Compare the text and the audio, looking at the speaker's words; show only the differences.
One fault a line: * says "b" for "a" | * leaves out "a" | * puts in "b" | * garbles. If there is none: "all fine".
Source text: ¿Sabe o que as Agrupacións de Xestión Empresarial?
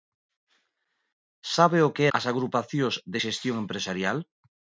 all fine